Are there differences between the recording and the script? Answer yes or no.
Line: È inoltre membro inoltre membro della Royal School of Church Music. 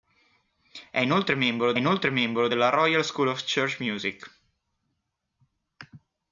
no